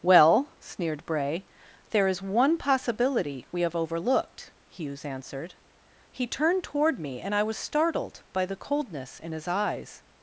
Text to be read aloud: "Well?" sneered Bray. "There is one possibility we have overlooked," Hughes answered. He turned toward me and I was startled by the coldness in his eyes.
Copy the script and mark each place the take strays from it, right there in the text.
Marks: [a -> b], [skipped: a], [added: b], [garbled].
"Well?" sneered Bray. "There is one possibility we have overlooked," Hughes answered. He turned toward me and I was startled by the coldness in his eyes.